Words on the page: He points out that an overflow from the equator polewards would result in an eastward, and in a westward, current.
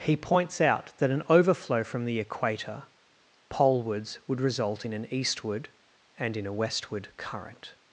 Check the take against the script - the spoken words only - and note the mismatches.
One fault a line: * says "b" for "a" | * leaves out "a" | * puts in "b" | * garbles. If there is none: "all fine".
all fine